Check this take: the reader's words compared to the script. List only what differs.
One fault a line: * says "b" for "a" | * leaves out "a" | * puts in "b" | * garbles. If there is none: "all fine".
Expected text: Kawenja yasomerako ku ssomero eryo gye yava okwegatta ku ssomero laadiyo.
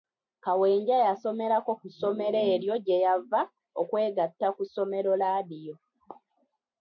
all fine